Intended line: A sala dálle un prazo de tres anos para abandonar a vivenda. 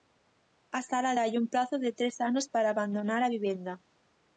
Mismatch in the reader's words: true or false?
false